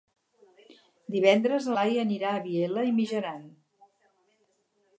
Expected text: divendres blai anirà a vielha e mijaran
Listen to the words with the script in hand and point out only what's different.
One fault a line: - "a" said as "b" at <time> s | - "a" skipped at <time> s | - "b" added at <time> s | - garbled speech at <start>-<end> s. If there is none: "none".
none